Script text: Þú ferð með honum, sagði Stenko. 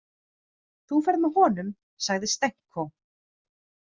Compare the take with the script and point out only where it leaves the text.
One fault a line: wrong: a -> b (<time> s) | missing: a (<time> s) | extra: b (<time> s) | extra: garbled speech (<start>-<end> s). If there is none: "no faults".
no faults